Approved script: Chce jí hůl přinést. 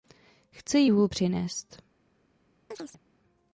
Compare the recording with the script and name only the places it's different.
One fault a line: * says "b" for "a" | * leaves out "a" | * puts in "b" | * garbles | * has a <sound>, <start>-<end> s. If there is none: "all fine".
* has a chirp, 2.7-3.0 s